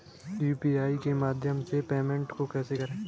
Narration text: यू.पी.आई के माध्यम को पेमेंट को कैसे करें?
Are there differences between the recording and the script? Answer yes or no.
yes